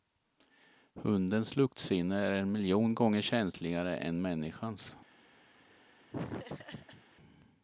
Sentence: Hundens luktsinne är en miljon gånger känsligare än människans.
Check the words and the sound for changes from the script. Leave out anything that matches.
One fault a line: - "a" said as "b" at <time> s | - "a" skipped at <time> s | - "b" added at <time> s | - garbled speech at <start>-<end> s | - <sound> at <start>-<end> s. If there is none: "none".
- laugh at 6.1-7.0 s